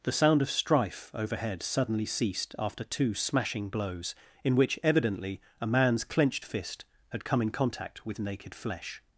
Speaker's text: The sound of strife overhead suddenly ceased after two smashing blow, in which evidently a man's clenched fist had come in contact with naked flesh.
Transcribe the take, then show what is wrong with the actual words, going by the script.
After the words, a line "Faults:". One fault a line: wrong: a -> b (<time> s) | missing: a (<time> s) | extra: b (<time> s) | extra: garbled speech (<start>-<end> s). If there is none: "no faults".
The sound of strife overhead suddenly ceased after two smashing blows, in which evidently a man's clenched fist had come in contact with naked flesh.
Faults:
wrong: blow -> blows (3.7 s)